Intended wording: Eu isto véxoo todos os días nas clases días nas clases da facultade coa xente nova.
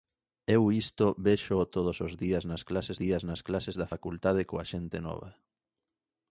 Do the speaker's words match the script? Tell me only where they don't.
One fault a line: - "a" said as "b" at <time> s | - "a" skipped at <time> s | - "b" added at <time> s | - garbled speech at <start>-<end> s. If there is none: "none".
none